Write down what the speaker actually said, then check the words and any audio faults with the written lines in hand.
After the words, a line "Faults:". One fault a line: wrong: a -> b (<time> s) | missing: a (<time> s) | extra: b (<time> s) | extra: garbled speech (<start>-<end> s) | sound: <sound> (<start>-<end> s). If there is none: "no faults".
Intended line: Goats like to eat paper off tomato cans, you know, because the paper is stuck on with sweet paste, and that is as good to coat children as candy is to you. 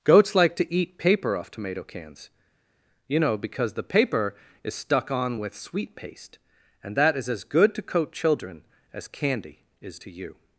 Goats like to eat paper off tomato cans, you know, because the paper is stuck on with sweet paste, and that is as good to coat children as candy is to you.
Faults:
no faults